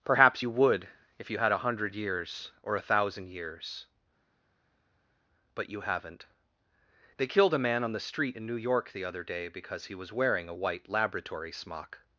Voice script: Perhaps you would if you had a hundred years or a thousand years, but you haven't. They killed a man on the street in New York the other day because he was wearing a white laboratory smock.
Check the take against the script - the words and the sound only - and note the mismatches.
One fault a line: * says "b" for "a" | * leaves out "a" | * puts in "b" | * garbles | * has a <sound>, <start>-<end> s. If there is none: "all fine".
all fine